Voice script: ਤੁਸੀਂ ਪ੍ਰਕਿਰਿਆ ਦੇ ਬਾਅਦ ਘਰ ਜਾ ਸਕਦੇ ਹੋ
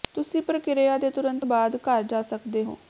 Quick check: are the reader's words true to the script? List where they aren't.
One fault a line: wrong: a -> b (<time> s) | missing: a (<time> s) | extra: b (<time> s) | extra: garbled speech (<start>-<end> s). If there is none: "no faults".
extra: ਤੁਰੰਤ (1.1 s)